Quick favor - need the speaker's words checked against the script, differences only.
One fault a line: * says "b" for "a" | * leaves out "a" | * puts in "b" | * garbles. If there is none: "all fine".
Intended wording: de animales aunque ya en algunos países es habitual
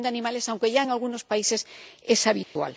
all fine